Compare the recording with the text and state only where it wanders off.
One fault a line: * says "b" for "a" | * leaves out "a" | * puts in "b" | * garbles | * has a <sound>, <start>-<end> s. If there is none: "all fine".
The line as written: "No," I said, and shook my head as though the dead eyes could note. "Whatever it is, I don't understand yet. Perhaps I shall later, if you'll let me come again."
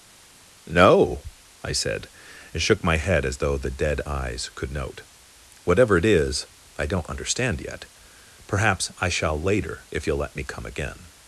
all fine